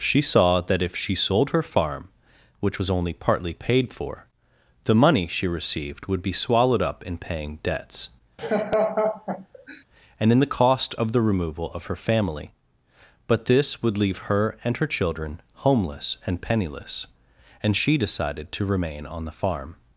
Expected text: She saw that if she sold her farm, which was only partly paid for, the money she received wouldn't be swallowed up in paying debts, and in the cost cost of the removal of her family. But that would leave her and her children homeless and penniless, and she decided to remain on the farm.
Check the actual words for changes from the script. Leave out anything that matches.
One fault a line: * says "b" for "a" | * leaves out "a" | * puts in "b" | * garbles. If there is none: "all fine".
* says "would" for "wouldn't"
* leaves out "cost"
* says "this" for "that"